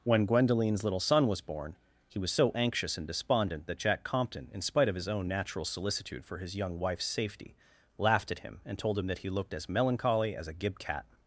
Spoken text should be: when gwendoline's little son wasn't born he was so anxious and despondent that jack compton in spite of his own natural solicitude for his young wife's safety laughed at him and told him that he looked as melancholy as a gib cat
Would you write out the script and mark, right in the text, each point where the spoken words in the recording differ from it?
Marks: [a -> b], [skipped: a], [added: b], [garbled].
when gwendoline's little son [wasn't -> was] born he was so anxious and despondent that jack compton in spite of his own natural solicitude for his young wife's safety laughed at him and told him that he looked as melancholy as a gib cat